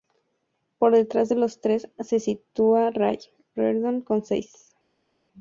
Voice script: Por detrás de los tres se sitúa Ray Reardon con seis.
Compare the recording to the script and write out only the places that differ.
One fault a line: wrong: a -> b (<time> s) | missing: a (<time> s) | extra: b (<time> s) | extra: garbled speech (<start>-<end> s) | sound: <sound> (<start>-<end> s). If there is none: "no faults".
no faults